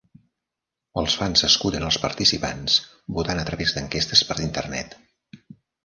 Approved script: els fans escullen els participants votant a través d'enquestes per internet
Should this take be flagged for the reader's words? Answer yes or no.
no